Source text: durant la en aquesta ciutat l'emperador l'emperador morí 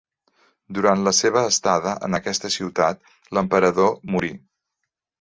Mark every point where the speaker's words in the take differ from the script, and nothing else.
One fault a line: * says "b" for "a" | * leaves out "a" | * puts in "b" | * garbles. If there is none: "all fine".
* puts in "seva estada"
* leaves out "l'emperador"